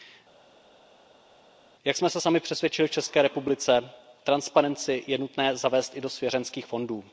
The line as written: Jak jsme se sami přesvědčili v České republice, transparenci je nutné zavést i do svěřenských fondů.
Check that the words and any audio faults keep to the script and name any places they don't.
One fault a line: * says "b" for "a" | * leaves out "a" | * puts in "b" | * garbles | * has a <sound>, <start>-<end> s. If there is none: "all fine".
all fine